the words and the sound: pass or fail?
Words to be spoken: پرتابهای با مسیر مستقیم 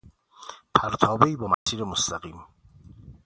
fail